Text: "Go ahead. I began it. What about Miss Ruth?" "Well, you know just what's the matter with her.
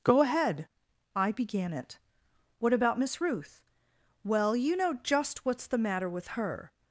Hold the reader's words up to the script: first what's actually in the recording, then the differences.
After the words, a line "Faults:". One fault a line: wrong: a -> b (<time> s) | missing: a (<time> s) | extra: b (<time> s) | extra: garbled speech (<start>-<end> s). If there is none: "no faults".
"Go ahead. I began it. What about Miss Ruth?" "Well, you know just what's the matter with her.
Faults:
no faults